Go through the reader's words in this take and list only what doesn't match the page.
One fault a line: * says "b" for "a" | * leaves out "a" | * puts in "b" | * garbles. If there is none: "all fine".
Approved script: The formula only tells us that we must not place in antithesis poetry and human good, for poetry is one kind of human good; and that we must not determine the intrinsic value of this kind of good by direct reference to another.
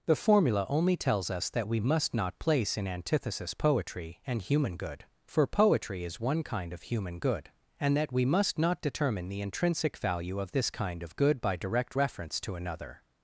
all fine